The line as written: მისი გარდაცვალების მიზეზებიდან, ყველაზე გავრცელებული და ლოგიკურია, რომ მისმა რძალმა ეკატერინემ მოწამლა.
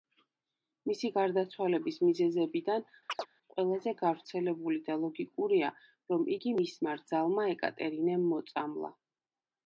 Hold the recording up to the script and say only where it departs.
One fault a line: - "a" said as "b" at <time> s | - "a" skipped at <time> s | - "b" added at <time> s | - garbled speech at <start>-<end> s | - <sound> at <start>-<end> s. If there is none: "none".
- chirp at 3.1-3.3 s
- "იგი" added at 6.4 s